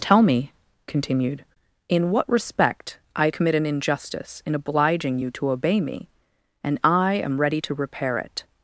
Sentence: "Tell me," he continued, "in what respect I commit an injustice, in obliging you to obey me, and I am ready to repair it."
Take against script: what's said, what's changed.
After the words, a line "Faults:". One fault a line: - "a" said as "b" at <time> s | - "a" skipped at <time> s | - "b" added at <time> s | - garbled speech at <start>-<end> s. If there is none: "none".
"Tell me," continued, "in what respect I commit an injustice, in obliging you to obey me, and I am ready to repair it."
Faults:
- "he" skipped at 0.5 s